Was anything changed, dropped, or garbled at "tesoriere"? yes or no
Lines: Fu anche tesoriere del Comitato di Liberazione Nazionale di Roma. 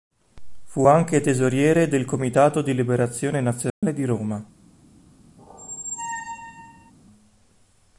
no